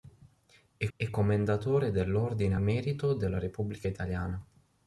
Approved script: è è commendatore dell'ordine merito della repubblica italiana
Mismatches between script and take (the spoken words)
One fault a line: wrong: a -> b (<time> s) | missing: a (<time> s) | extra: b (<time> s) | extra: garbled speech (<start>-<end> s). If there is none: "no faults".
no faults